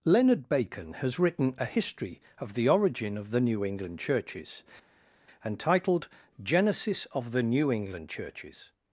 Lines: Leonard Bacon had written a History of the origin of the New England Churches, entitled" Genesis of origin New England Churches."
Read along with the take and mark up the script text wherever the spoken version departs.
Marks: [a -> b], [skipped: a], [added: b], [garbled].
Leonard Bacon [had -> has] written a History of the origin of the New England Churches, entitled" Genesis of [origin -> the] New England Churches."